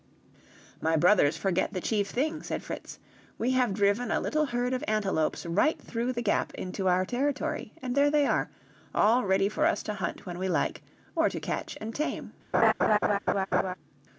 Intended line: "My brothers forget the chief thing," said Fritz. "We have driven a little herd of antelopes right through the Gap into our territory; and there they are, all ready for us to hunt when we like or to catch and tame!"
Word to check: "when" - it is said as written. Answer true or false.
true